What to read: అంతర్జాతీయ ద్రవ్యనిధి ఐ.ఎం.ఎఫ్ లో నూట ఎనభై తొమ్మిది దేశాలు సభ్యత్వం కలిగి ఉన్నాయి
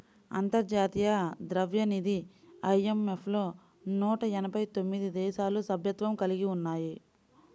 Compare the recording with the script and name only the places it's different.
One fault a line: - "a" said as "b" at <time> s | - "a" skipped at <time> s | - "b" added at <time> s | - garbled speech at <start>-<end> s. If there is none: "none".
none